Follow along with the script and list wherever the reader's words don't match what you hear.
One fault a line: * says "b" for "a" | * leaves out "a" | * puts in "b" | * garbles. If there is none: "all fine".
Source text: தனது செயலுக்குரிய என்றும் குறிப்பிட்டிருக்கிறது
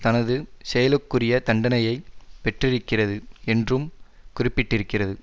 * puts in "தண்டனையை பெற்றிருக்கிறது"